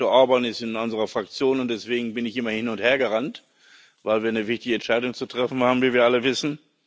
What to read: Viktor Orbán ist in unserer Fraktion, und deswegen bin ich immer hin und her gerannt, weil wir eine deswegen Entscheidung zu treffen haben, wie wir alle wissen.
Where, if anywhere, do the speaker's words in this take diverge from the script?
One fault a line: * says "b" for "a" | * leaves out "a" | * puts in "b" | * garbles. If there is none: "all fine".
* says "wichtige" for "deswegen"